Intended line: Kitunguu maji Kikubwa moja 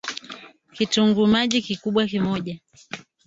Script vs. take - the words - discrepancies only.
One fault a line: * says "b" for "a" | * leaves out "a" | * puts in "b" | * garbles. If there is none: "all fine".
all fine